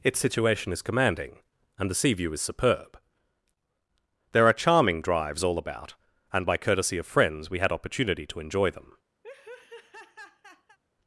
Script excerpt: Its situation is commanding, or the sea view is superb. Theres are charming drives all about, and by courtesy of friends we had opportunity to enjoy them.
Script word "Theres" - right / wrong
wrong